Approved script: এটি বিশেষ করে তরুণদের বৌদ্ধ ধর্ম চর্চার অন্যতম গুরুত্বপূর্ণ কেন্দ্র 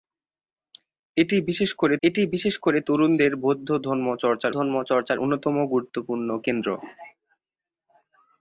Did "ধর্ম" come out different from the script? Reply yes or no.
no